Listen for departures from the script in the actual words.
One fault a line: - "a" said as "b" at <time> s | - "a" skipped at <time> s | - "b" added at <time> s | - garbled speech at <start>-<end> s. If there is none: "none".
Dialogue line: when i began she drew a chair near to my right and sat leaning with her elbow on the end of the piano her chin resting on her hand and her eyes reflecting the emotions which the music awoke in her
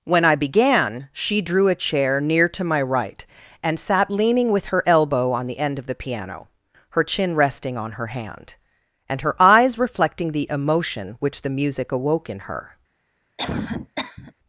- "emotions" said as "emotion" at 10.5 s